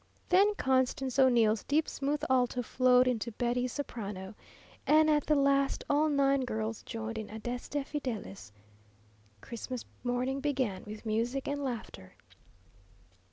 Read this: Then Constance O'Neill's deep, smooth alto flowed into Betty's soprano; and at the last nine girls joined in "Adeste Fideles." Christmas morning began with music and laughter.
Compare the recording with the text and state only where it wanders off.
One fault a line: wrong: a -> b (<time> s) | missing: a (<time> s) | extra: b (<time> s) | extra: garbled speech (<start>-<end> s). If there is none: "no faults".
extra: all (5.9 s)